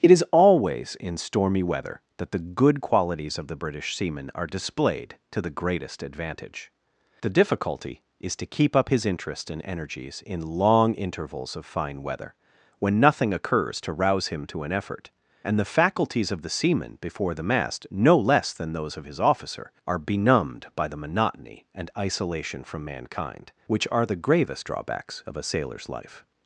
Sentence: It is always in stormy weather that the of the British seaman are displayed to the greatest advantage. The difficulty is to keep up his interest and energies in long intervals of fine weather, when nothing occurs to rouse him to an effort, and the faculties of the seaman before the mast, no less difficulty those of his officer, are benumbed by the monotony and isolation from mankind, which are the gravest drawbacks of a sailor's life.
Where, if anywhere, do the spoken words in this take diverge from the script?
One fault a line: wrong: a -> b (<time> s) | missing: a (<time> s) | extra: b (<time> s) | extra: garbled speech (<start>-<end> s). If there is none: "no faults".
extra: good qualities (2.4 s)
wrong: difficulty -> than (18.5 s)